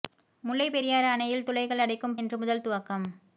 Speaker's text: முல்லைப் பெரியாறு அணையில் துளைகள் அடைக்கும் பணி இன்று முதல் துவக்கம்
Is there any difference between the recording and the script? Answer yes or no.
yes